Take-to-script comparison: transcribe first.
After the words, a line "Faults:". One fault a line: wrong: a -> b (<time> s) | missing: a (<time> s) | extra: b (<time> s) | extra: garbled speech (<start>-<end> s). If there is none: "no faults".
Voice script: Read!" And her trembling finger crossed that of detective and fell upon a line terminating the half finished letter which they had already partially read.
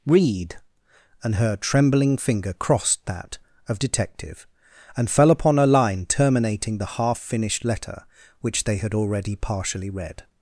Read!" And her trembling finger crossed that of detective and fell upon a line terminating the half finished letter which they had already partially read.
Faults:
no faults